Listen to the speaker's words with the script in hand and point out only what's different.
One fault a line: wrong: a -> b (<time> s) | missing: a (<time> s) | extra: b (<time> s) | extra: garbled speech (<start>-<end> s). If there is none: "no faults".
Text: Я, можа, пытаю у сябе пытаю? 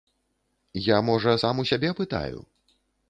wrong: пытаю -> сам (1.4 s)